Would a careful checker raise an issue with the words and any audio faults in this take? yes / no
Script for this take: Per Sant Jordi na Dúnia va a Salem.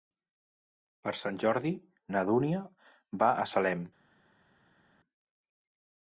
no